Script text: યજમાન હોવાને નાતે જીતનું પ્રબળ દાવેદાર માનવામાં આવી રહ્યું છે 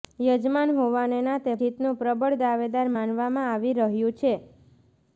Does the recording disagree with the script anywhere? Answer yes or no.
no